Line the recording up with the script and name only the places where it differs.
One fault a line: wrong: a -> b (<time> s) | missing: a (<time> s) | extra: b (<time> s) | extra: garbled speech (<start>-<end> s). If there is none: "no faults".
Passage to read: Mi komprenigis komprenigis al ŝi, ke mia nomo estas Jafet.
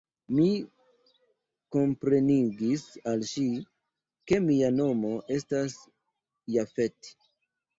missing: komprenigis (2.9 s)